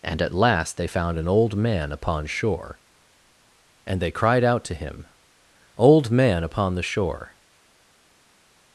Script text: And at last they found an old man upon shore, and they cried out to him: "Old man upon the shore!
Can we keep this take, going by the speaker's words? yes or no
yes